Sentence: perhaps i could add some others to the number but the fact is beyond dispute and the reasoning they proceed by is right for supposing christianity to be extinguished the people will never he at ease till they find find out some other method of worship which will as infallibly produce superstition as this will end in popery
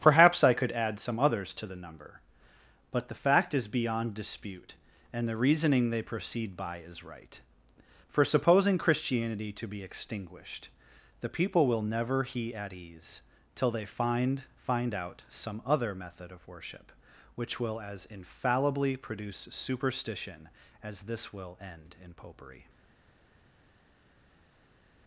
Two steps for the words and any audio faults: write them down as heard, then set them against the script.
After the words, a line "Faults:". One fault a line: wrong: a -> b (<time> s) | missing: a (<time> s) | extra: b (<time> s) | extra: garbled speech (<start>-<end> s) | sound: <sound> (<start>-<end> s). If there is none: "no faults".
perhaps i could add some others to the number but the fact is beyond dispute and the reasoning they proceed by is right for supposing christianity to be extinguished the people will never he at ease till they find find out some other method of worship which will as infallibly produce superstition as this will end in popery
Faults:
no faults